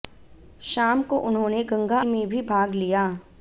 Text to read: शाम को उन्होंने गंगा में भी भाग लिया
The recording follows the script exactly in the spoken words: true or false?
true